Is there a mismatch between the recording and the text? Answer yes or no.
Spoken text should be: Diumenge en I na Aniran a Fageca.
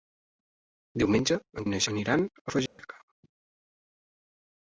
no